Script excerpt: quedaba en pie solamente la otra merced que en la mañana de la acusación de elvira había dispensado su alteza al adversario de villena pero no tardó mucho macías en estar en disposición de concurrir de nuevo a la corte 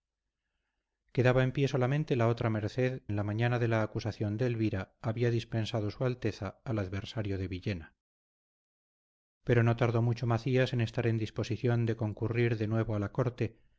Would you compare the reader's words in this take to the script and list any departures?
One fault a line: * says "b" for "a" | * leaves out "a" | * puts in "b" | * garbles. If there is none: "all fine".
* leaves out "que"